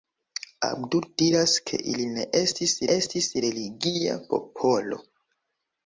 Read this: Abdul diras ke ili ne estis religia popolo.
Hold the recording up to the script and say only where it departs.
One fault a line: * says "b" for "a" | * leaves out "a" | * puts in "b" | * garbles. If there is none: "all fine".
* puts in "estis"